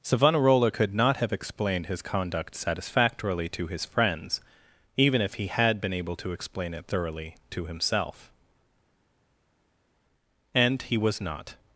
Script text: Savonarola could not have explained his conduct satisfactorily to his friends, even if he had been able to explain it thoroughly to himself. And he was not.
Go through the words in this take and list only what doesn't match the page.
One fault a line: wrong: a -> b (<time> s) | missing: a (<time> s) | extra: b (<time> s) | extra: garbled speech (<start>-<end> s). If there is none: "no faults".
no faults